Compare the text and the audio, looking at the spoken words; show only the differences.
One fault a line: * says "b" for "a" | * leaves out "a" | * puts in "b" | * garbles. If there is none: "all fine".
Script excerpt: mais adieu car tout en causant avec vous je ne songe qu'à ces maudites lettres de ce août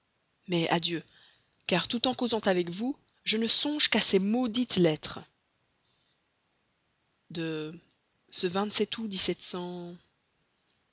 all fine